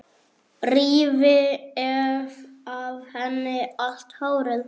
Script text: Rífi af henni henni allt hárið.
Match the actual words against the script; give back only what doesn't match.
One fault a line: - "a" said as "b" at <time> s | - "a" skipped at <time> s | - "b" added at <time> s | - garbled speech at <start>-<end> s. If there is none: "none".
- "henni" skipped at 3.6 s